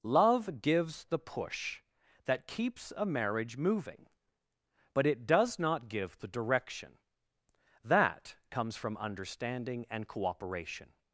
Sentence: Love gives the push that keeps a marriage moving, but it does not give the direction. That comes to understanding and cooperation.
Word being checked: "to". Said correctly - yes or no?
no